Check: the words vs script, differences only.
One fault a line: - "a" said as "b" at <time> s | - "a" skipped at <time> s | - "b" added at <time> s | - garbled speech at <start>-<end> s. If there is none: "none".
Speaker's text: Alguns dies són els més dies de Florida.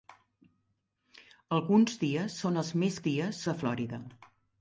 none